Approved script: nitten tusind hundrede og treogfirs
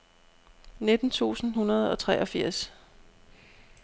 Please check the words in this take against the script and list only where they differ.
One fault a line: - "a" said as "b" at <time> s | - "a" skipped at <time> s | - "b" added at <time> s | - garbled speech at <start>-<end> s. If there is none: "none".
none